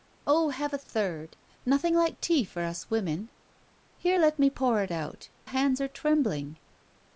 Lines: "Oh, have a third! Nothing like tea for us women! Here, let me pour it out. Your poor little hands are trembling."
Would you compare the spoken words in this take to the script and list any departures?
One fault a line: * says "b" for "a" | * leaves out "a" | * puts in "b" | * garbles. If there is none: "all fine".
* leaves out "Your poor little"